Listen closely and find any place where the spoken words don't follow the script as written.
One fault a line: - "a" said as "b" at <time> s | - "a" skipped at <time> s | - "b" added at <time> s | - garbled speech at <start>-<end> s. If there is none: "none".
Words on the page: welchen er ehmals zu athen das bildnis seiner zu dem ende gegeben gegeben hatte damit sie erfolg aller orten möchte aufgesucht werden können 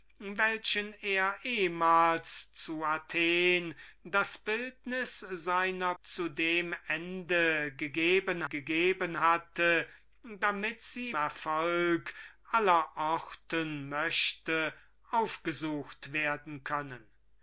none